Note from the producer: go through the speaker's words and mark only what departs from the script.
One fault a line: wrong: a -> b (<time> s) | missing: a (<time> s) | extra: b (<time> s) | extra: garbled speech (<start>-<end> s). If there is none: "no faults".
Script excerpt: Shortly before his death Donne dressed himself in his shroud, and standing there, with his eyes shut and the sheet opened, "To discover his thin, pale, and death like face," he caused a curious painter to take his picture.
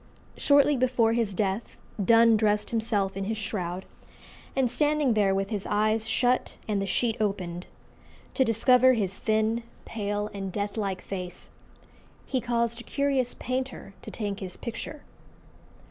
no faults